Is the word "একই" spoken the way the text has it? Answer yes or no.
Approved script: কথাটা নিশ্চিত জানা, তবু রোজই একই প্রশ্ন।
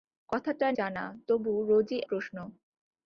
no